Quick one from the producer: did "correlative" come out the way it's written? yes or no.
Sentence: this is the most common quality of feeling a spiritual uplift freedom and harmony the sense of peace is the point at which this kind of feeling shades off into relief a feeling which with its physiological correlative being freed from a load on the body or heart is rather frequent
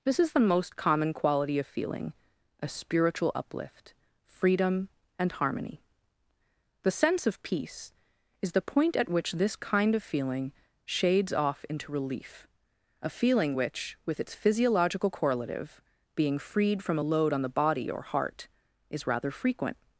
yes